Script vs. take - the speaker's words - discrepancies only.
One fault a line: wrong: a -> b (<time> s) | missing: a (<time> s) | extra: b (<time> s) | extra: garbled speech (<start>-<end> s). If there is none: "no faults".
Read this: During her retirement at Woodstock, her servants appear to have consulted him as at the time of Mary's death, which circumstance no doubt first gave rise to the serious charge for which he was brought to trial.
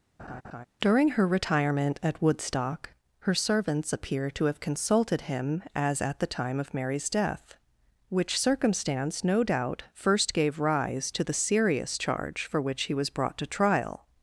no faults